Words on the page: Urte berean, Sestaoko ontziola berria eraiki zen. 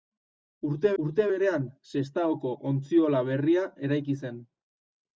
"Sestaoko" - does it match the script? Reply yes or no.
yes